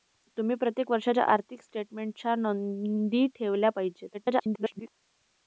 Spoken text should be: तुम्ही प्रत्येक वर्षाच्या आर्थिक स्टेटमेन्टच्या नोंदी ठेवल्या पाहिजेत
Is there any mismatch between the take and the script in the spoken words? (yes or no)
yes